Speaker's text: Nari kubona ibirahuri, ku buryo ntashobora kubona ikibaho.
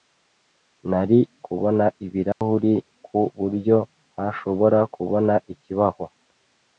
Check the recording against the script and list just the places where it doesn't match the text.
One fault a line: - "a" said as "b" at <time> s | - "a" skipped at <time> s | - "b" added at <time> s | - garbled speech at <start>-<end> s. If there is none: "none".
none